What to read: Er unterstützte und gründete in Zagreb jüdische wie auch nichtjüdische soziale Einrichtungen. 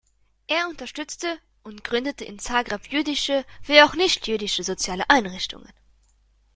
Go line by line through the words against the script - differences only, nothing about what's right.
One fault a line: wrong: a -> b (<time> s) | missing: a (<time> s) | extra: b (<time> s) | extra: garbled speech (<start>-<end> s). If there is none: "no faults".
no faults